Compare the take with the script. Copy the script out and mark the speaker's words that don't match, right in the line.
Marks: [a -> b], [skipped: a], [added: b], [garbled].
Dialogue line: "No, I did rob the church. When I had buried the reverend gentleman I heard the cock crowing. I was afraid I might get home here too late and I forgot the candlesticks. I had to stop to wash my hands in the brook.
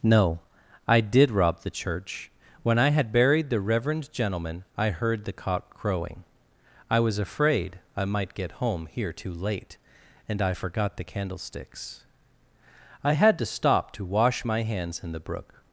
"No, I did rob the church. When I had buried the reverend gentleman I heard the cock crowing. I was afraid I might get home here too late and I forgot the candlesticks. I had to stop to wash my hands in the brook.